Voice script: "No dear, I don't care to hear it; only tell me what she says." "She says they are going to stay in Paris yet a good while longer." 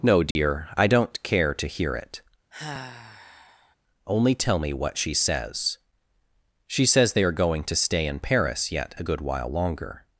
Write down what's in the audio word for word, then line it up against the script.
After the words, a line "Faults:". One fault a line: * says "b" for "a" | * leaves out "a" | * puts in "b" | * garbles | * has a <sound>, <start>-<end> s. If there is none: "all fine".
"No dear, I don't care to hear it; only tell me what she says." "She says they are going to stay in Paris yet a good while longer."
Faults:
* has a dropout, 0.3-0.4 s
* has a sigh, 2.5-3.8 s